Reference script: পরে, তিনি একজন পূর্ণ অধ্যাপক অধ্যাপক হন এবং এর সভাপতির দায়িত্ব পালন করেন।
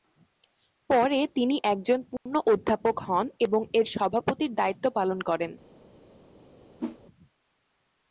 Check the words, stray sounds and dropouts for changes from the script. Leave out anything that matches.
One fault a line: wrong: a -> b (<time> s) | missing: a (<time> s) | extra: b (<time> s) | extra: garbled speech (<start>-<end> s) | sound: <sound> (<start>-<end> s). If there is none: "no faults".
sound: dropout (2.2-2.3 s)
missing: অধ্যাপক (2.9 s)
sound: whoosh (6.8-7.0 s)